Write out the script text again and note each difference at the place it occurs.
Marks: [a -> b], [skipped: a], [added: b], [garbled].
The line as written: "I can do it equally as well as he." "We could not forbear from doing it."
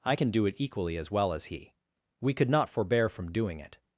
"I can do it equally as well as he." "We could not forbear from doing it."